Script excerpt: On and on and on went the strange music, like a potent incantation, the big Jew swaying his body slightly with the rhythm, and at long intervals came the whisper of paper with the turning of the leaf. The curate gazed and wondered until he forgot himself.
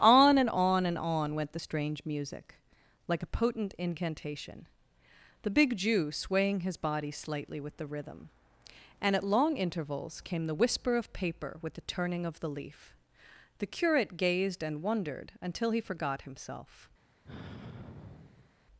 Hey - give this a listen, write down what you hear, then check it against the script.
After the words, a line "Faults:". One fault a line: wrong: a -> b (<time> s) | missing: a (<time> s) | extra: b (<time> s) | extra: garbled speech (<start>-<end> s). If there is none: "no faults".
On and on and on went the strange music, like a potent incantation, the big Jew swaying his body slightly with the rhythm, and at long intervals came the whisper of paper with the turning of the leaf. The curate gazed and wondered until he forgot himself.
Faults:
no faults